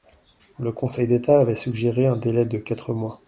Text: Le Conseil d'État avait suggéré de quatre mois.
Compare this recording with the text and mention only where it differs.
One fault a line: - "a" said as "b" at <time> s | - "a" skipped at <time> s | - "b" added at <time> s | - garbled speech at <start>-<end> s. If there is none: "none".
- "un délai" added at 2.1 s